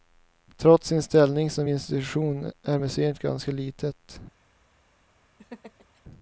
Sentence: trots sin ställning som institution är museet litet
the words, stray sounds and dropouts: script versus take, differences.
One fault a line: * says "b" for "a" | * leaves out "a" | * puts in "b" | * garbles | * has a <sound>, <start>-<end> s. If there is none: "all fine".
* puts in "ganska"
* has a laugh, 5.4-6.0 s